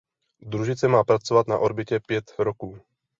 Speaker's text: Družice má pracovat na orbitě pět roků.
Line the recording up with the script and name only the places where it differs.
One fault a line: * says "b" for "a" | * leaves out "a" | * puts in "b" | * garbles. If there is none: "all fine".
all fine